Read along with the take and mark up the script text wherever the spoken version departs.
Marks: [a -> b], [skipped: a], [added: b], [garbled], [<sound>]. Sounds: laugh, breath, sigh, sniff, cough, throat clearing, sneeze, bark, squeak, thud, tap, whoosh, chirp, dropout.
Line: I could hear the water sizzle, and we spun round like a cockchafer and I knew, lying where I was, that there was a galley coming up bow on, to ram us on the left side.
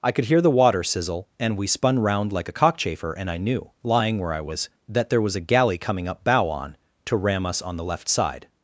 I could hear the water sizzle, and we spun round like a cockchafer and I knew, lying where I was, that there was a galley coming up bow on, to ram us on the left side.